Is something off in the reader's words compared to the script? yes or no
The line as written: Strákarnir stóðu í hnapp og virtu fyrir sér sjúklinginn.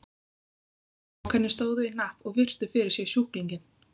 no